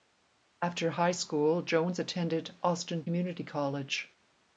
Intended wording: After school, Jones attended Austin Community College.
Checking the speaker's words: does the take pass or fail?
fail